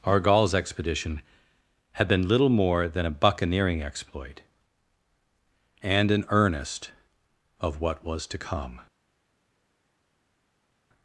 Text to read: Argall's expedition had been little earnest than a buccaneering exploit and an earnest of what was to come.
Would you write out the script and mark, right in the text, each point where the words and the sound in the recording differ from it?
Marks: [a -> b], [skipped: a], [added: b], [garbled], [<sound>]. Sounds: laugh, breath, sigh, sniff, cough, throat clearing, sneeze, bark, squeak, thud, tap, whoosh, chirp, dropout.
Argall's expedition had been little [earnest -> more] than a buccaneering exploit and an earnest of what was to come.